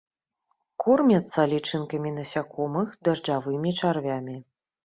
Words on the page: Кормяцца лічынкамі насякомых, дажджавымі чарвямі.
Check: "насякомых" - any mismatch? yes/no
no